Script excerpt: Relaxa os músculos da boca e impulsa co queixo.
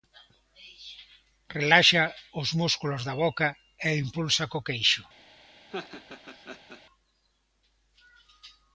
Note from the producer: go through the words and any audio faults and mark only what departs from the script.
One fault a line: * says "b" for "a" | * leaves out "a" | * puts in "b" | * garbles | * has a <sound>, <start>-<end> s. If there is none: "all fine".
* has a laugh, 5.7-6.8 s